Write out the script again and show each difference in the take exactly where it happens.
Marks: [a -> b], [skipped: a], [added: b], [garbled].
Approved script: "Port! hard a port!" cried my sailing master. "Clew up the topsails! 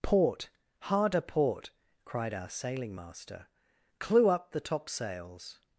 "Port! hard a port!" cried [my -> our] sailing master. "Clew up the topsails!